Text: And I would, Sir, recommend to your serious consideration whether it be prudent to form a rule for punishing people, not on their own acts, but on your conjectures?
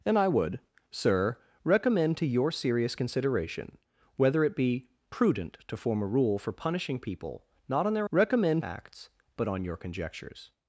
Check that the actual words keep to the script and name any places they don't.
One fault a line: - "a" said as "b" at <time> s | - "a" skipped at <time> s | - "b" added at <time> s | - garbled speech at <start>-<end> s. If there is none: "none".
- "own" said as "recommend" at 8.1 s